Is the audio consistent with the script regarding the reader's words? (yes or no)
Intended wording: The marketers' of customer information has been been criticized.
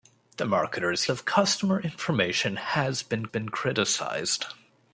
yes